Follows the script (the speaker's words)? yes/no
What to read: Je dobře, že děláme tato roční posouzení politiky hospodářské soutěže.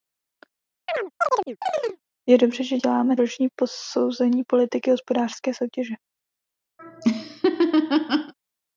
no